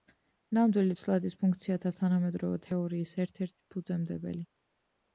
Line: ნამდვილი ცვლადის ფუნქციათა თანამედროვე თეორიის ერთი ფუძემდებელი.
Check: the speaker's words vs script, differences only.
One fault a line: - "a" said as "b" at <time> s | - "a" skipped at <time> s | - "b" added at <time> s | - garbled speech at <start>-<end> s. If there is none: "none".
- "ერთ" added at 3.3 s